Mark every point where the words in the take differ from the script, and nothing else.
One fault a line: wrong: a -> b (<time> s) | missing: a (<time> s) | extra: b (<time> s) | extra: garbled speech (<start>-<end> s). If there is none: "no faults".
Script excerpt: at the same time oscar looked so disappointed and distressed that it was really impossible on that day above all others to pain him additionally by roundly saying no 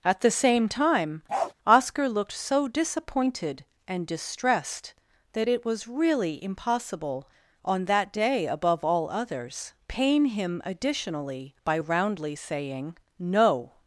missing: to (9.7 s)